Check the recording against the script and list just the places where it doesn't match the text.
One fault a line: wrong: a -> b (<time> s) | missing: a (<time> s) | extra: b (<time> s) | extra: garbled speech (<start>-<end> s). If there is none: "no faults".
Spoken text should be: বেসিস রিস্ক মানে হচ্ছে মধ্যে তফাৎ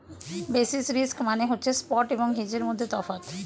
extra: স্পট এবং হেজের (1.7 s)